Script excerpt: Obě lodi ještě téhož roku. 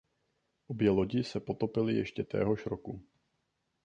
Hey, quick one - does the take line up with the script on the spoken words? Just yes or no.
no